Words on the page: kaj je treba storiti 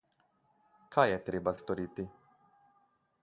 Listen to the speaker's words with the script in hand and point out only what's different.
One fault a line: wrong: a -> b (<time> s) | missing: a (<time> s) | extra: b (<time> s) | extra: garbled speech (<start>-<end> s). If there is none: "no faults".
no faults